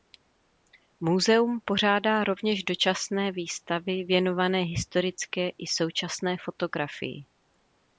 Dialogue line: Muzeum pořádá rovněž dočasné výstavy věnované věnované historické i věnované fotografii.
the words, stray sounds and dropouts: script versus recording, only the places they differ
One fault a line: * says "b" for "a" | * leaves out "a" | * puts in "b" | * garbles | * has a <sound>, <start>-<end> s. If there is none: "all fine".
* leaves out "věnované"
* says "současné" for "věnované"